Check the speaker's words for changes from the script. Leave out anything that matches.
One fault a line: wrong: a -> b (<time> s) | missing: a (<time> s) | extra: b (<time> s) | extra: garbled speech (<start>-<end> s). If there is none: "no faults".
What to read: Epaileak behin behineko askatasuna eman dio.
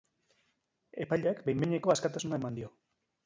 no faults